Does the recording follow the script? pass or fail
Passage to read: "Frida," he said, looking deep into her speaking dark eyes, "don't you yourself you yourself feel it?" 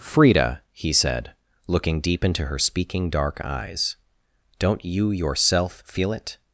fail